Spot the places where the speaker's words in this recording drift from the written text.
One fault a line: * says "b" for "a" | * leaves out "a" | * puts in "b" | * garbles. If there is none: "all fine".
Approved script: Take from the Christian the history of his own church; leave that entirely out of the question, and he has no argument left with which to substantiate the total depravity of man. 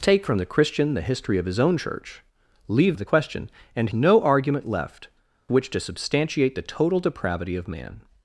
* leaves out "that entirely out"
* leaves out "he has"
* leaves out "with"